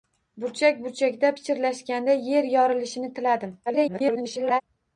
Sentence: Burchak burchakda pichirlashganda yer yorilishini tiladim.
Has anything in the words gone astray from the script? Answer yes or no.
yes